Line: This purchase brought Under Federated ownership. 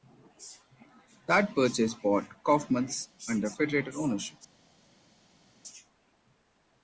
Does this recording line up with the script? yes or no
no